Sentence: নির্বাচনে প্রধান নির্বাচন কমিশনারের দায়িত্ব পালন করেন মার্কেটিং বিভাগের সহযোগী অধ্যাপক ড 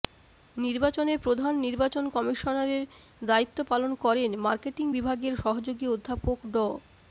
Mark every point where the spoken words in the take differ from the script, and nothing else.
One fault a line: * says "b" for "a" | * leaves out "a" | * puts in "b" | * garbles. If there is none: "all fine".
all fine